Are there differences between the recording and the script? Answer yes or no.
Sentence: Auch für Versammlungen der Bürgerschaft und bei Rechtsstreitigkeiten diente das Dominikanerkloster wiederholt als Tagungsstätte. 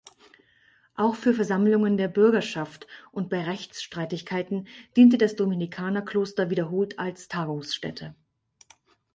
no